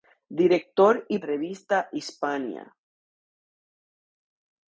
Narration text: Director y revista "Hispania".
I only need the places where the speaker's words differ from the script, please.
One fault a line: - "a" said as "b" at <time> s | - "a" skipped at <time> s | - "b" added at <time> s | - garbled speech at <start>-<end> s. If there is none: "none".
none